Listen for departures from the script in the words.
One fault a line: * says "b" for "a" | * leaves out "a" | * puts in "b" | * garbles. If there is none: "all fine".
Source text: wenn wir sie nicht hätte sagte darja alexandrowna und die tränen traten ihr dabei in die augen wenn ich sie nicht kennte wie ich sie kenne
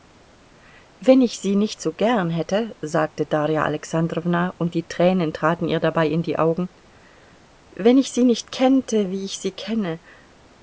* says "ich" for "wir"
* puts in "so gern"